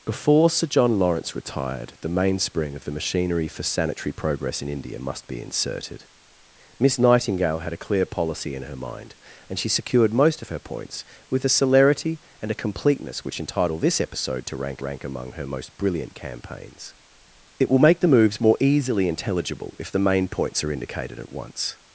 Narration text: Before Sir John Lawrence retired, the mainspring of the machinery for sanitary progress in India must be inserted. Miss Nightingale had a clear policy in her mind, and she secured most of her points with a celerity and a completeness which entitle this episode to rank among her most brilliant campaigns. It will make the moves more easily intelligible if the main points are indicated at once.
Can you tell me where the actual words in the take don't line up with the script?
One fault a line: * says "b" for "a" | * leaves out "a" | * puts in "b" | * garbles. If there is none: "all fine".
* puts in "rank"